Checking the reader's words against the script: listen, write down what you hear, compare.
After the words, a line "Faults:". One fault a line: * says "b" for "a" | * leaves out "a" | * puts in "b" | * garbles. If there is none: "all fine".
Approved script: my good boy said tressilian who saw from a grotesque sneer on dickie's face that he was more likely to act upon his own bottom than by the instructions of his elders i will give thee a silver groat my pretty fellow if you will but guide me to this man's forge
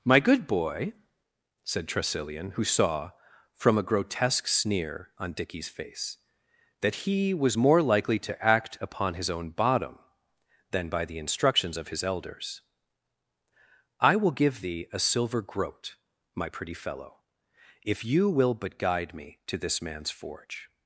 my good boy said tressilian who saw from a grotesque sneer on dickie's face that he was more likely to act upon his own bottom than by the instructions of his elders i will give thee a silver groat my pretty fellow if you will but guide me to this man's forge
Faults:
all fine